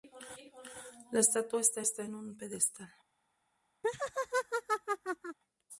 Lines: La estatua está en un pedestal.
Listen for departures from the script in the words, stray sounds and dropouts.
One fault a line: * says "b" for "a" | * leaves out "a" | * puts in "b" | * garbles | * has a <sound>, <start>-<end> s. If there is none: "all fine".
* puts in "está"
* has a laugh, 3.8-5.4 s